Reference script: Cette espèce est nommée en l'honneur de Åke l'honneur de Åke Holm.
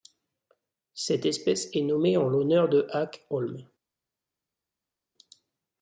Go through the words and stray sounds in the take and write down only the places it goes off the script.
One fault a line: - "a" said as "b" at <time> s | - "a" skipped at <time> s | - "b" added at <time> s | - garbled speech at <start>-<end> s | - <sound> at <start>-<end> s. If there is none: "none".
- "l'honneur de Åke" skipped at 3.3 s